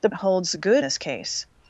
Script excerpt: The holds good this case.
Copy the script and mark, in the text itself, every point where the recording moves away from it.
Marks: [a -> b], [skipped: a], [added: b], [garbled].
The holds good this case.